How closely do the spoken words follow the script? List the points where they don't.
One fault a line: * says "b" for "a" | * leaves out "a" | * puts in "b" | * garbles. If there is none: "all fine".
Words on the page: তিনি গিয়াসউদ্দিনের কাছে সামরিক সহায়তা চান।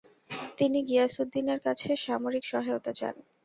all fine